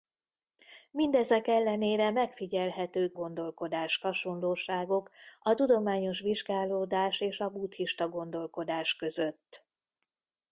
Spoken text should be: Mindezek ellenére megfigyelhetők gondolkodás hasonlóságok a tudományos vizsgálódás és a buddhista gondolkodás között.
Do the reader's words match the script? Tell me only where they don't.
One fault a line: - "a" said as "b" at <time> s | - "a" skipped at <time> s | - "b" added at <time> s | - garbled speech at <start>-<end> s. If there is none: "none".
none